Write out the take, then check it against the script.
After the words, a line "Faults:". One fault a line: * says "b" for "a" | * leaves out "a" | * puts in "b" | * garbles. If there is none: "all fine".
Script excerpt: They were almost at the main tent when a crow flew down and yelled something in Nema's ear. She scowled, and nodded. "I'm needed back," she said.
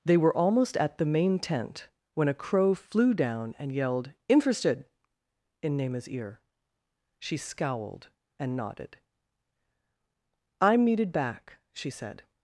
They were almost at the main tent when a crow flew down and yelled interested in Nema's ear. She scowled, and nodded. "I'm needed back," she said.
Faults:
* says "interested" for "something"